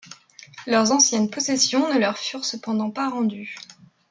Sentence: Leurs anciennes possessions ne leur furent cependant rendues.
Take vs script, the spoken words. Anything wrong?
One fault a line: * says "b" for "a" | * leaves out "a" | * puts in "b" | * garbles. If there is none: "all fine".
* puts in "pas"